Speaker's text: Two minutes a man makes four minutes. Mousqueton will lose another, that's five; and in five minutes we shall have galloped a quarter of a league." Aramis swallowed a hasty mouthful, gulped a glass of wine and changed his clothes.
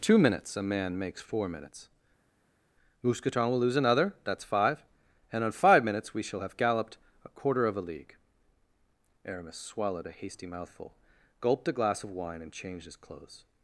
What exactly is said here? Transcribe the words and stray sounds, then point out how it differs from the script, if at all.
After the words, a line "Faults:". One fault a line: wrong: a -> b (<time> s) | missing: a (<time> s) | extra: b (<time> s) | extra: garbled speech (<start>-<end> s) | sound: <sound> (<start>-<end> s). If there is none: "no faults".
Two minutes a man makes four minutes. Mousqueton will lose another, that's five; and on five minutes we shall have galloped a quarter of a league." Aramis swallowed a hasty mouthful, gulped a glass of wine and changed his clothes.
Faults:
wrong: in -> on (5.4 s)